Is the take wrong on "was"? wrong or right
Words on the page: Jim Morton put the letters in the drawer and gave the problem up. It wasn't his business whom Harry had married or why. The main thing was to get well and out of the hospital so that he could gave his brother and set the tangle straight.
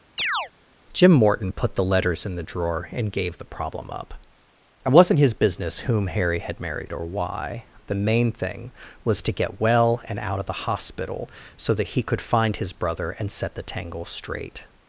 right